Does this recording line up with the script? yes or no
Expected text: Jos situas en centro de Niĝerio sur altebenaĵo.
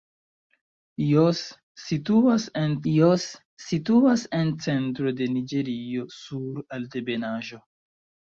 no